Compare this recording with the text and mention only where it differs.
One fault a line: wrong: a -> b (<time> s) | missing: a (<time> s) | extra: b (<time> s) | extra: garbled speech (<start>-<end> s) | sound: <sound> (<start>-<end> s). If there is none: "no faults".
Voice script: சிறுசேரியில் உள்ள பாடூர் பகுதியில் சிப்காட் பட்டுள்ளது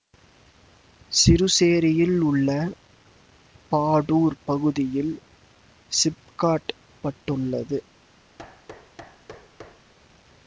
sound: thud (8.4-9.9 s)